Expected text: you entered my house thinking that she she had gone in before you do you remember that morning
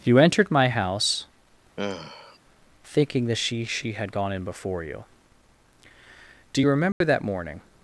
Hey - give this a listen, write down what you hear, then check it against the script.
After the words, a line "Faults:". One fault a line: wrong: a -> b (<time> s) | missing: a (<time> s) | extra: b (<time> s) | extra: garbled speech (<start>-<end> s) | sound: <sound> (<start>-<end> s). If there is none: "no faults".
you entered my house thinking that she she had gone in before you do you remember that morning
Faults:
sound: sigh (1.8-2.4 s)
sound: dropout (6.9-7.0 s)